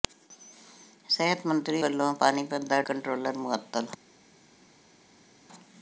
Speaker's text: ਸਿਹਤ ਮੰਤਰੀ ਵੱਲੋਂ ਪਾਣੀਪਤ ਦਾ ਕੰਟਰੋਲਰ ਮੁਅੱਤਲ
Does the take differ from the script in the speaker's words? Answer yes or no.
no